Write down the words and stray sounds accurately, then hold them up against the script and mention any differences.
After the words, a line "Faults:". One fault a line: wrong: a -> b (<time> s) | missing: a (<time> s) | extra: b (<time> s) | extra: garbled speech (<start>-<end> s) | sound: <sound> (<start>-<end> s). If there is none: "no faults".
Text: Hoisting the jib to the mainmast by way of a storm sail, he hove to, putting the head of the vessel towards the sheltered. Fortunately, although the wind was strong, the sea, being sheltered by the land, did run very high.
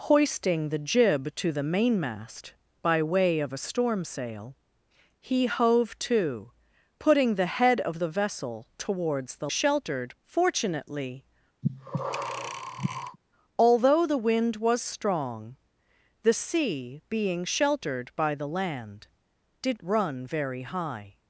Hoisting the jib to the mainmast by way of a storm sail, he hove to, putting the head of the vessel towards the sheltered. Fortunately, although the wind was strong, the sea, being sheltered by the land, did run very high.
Faults:
sound: breath (11.6-13.2 s)